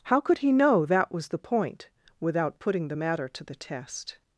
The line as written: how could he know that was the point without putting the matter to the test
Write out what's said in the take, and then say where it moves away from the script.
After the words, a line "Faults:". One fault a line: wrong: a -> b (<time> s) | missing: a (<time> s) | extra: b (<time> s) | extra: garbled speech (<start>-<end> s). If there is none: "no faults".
how could he know that was the point without putting the matter to the test
Faults:
no faults